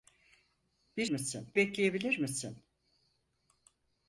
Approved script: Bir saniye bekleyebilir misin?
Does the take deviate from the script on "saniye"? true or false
true